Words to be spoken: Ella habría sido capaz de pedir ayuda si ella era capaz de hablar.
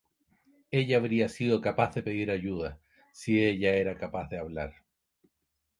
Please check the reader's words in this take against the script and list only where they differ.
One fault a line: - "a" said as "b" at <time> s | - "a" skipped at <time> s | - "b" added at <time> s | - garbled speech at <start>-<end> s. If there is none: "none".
none